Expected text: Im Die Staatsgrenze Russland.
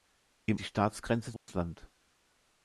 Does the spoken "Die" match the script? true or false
true